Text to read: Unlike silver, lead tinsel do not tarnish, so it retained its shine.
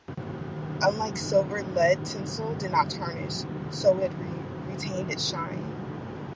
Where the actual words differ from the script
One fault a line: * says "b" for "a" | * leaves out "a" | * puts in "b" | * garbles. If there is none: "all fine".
* says "did" for "do"